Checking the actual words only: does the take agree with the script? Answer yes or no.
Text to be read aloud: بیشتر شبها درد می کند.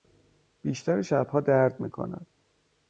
yes